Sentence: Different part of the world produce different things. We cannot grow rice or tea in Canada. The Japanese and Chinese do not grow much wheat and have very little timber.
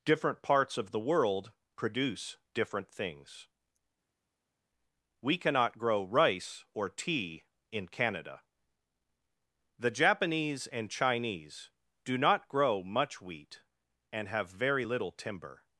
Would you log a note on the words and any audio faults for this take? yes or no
yes